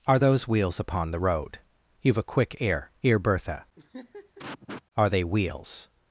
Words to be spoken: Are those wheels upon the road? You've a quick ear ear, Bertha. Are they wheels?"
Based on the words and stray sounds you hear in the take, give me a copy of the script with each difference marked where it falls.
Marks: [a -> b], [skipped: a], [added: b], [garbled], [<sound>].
Are those wheels upon the road? You've a quick ear ear, Bertha. [laugh] Are they wheels?"